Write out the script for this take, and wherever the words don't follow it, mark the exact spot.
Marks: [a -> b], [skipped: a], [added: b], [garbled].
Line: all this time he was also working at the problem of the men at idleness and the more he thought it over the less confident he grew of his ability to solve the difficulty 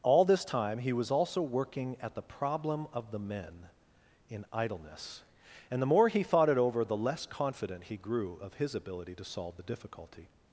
all this time he was also working at the problem of the men [at -> in] idleness and the more he thought it over the less confident he grew of his ability to solve the difficulty